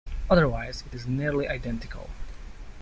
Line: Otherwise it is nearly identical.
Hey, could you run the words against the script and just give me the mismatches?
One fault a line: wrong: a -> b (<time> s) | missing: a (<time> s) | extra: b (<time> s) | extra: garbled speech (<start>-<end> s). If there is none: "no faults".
no faults